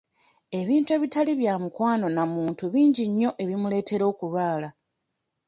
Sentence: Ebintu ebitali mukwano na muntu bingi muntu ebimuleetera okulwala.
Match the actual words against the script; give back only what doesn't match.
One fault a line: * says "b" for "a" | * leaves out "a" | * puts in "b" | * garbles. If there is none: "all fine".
* puts in "bya"
* says "nnyo" for "muntu"